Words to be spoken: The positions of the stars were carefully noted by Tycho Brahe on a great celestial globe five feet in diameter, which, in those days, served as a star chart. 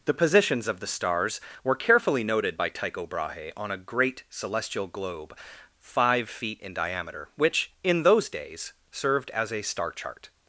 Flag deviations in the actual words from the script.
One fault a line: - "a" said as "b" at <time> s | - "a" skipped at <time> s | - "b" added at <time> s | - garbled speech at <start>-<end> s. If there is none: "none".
none